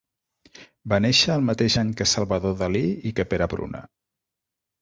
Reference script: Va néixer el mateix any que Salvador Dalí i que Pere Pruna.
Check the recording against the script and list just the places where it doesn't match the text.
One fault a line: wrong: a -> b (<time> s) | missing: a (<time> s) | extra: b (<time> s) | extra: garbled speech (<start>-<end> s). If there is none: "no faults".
no faults